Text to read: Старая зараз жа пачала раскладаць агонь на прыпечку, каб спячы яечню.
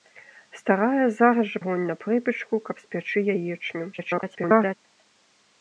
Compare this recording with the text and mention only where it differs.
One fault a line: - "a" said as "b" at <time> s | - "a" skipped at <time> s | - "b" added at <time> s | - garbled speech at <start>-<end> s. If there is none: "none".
- "пачала раскладаць" skipped at 1.6 s
- garbled speech at 3.9-4.8 s